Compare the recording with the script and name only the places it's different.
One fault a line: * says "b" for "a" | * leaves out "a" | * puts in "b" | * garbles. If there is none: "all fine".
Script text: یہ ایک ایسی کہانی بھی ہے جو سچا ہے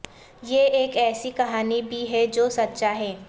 all fine